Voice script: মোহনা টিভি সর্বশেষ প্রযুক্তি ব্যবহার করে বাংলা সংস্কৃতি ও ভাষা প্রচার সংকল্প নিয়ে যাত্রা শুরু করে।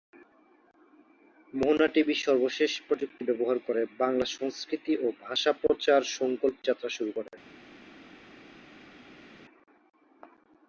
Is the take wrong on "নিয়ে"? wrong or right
wrong